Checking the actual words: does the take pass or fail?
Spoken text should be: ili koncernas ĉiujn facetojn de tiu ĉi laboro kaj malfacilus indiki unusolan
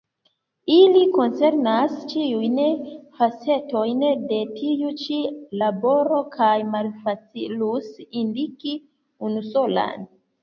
pass